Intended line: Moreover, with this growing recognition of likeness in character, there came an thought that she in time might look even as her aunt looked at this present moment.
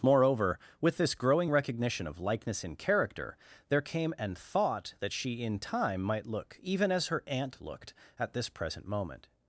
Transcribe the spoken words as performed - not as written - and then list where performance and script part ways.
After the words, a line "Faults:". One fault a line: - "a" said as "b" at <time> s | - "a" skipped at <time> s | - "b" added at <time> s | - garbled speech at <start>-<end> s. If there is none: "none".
Moreover, with this growing recognition of likeness in character, there came an thought that she in time might look even as her aunt looked at this present moment.
Faults:
none